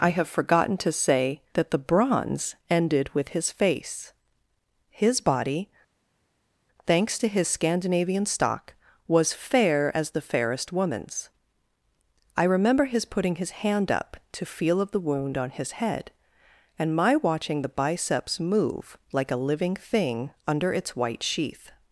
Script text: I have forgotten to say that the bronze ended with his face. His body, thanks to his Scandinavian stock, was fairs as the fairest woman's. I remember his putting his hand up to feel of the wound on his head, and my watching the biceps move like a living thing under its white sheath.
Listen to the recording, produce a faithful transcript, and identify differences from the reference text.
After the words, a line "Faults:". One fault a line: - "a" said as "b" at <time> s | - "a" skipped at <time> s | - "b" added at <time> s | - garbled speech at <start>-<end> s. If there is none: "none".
I have forgotten to say that the bronze ended with his face. His body, thanks to his Scandinavian stock, was fair as the fairest woman's. I remember his putting his hand up to feel of the wound on his head, and my watching the biceps move like a living thing under its white sheath.
Faults:
- "fairs" said as "fair" at 9.3 s